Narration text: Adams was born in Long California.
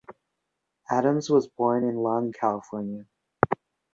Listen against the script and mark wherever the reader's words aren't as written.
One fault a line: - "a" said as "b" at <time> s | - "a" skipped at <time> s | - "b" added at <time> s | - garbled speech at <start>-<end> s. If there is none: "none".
none